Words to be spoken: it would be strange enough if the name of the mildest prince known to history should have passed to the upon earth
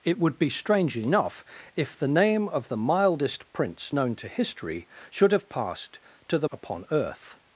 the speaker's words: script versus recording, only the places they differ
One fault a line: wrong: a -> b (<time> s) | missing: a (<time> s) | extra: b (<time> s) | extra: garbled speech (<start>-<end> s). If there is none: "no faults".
no faults